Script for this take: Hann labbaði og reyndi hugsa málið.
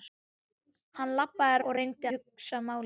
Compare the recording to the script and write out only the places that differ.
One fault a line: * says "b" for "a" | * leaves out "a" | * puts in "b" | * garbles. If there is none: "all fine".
all fine